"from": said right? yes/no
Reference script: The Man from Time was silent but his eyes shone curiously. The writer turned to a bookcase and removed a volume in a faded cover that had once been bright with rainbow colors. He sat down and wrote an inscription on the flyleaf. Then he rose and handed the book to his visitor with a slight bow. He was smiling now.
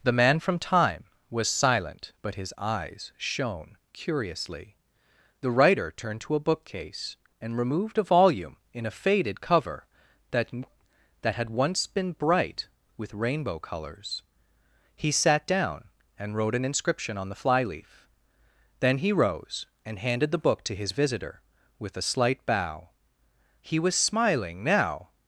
yes